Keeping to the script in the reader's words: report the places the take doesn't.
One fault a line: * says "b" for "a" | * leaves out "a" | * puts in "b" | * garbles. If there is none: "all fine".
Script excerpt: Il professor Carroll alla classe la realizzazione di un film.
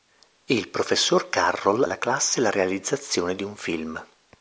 all fine